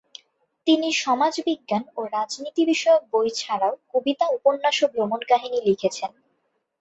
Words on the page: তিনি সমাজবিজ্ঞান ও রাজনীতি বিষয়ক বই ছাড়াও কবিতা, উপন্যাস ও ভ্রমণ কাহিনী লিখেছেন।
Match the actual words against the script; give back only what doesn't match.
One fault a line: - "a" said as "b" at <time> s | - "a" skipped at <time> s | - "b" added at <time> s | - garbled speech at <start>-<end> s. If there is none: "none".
none